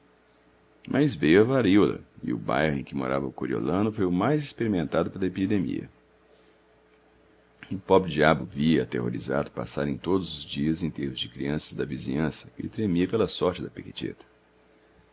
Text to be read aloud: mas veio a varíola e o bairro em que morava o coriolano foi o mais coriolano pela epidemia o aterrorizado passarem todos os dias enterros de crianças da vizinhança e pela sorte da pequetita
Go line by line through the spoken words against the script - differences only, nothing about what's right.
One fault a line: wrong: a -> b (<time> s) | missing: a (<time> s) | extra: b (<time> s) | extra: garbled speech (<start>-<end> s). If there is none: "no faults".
wrong: coriolano -> experimentado (4.4 s)
extra: pobre diabo via (7.8 s)
extra: tremia (12.7 s)